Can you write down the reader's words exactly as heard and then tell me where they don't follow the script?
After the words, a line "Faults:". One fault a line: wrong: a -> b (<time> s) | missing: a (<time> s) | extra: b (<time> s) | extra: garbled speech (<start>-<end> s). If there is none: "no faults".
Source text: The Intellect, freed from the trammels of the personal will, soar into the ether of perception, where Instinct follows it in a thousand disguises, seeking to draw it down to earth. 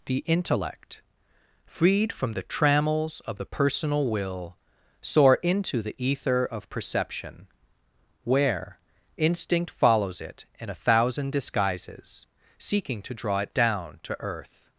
The Intellect, freed from the trammels of the personal will, soar into the ether of perception, where Instinct follows it in a thousand disguises, seeking to draw it down to earth.
Faults:
no faults